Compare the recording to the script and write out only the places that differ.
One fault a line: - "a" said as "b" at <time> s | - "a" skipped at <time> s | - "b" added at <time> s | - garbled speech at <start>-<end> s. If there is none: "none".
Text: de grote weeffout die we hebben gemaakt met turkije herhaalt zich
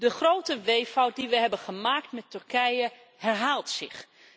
none